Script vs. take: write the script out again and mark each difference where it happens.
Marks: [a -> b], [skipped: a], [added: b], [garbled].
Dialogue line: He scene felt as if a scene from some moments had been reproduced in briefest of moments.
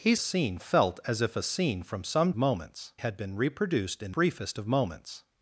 He scene felt as if a scene from some moments had been reproduced in briefest of moments.